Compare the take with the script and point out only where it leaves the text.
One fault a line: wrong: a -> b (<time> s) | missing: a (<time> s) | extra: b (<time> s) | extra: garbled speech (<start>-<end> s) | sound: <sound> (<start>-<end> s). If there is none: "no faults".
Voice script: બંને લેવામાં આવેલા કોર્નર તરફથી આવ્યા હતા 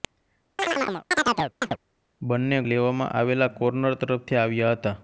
sound: chirp (0.6-1.8 s)